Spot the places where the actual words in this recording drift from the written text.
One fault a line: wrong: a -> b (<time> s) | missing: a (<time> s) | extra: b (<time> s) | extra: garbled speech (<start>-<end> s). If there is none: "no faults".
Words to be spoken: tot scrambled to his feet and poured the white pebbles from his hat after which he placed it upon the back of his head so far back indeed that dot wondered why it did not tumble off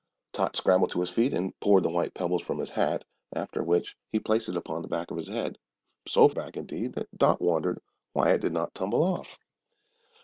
missing: far (6.3 s)